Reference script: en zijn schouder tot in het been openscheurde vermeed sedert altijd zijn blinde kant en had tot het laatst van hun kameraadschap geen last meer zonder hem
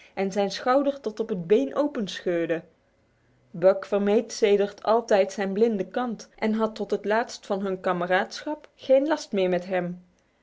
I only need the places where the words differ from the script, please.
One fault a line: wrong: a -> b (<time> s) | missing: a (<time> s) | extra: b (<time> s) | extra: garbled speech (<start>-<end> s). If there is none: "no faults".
wrong: in -> op (1.2 s)
extra: buck (3.5 s)
wrong: zonder -> met (9.5 s)